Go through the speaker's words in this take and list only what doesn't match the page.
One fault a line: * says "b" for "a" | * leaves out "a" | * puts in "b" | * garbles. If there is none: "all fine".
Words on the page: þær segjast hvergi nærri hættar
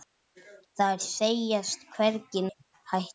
* leaves out "nærri"